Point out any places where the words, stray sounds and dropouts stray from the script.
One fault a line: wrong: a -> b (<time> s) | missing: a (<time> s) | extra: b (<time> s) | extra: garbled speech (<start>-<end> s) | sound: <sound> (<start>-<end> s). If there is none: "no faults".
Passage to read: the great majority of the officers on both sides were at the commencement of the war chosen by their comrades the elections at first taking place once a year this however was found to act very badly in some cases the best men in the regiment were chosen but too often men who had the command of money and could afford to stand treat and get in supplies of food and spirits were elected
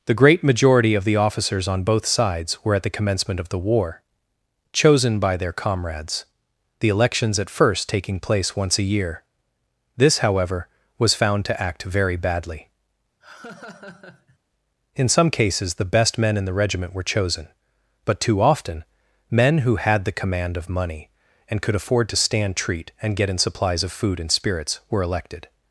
sound: laugh (13.2-14.4 s)